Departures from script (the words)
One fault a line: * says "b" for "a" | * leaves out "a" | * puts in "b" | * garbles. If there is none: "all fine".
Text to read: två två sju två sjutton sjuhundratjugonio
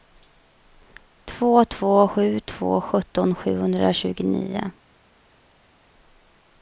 all fine